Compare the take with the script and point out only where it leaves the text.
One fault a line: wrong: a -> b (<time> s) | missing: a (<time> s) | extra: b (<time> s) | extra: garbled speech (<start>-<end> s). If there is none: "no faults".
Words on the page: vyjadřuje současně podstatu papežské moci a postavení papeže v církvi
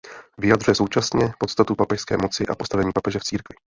no faults